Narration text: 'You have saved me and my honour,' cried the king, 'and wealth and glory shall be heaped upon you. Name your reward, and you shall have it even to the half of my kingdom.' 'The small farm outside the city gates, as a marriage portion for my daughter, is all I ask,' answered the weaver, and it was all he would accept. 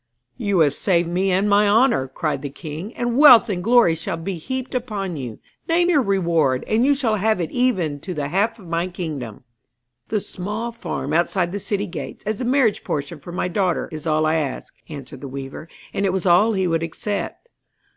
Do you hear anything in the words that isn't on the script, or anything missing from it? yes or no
no